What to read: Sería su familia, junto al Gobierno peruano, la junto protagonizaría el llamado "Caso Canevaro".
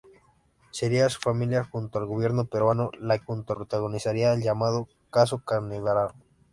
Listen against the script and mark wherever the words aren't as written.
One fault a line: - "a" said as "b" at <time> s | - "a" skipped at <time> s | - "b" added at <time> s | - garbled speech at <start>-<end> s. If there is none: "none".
none